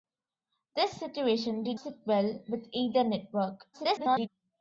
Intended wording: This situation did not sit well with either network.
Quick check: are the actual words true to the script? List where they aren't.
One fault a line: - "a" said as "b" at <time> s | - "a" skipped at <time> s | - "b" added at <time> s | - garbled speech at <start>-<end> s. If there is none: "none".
- "not" skipped at 1.8 s
- garbled speech at 3.7-4.3 s